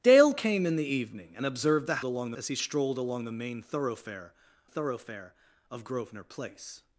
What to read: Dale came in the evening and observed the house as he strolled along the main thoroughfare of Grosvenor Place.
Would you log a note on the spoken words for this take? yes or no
yes